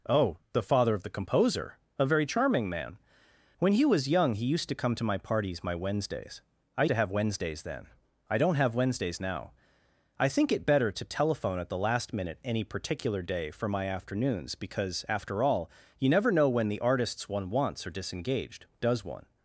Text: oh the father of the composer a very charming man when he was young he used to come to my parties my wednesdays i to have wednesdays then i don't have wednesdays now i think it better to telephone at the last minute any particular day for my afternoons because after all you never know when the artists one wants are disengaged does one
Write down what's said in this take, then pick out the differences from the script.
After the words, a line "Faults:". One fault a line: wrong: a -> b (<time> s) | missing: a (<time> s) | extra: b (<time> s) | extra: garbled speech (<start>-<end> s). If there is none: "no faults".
oh the father of the composer a very charming man when he was young he used to come to my parties my wednesdays i to have wednesdays then i don't have wednesdays now i think it better to telephone at the last minute any particular day for my afternoons because after all you never know when the artists one wants are disengaged does one
Faults:
no faults